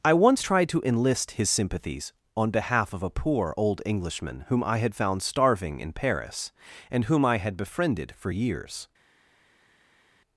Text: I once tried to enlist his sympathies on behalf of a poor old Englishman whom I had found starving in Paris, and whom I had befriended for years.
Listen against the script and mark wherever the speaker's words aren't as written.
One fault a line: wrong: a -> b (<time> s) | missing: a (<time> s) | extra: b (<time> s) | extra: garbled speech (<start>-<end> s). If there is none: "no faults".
no faults